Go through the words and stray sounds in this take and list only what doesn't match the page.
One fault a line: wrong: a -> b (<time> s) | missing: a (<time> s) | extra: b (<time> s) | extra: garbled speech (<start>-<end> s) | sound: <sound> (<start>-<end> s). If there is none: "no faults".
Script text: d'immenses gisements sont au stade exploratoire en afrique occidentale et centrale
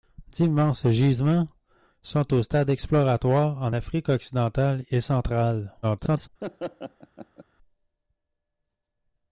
extra: garbled speech (5.8-6.3 s)
sound: laugh (6.4-7.4 s)